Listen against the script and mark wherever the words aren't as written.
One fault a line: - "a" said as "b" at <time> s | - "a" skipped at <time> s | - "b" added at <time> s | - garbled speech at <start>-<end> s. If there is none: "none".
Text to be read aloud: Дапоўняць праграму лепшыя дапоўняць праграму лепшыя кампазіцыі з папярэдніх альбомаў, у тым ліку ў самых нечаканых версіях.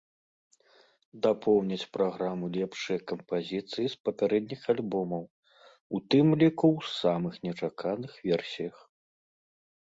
- "дапоўняць праграму лепшыя" skipped at 3.0 s